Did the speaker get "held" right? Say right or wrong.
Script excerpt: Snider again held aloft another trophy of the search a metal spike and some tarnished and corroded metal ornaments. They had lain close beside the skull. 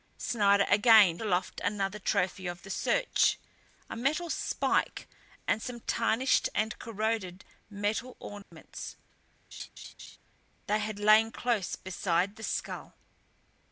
wrong